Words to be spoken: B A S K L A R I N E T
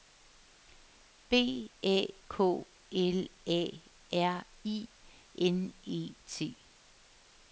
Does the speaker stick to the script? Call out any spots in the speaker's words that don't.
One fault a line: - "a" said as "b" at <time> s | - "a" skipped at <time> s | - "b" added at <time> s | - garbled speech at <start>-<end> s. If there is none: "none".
- "S" skipped at 2.1 s